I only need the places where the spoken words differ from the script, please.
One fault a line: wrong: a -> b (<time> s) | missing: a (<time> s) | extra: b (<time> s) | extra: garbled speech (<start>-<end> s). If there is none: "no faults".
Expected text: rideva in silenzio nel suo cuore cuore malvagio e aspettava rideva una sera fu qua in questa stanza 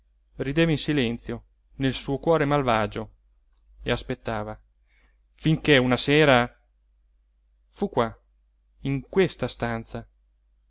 missing: cuore (2.5 s)
wrong: rideva -> finché (5.3 s)